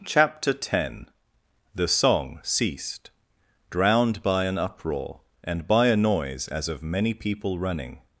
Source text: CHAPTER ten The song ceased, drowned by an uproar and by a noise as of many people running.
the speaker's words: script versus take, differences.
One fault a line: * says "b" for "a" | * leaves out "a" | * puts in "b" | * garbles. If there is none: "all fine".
all fine